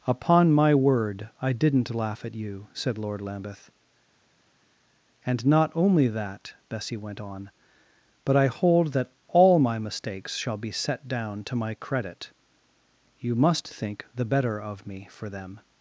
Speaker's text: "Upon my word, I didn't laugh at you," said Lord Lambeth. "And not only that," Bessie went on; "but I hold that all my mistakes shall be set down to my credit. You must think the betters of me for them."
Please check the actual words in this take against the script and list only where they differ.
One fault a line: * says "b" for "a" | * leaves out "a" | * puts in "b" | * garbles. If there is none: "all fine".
* says "better" for "betters"